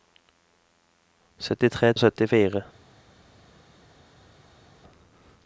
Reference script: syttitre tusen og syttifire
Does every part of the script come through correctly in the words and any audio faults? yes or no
no